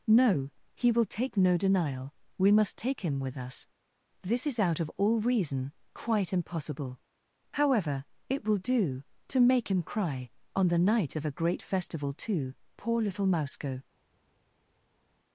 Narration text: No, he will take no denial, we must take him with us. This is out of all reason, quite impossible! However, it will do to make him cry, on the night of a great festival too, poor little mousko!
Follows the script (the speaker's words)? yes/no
yes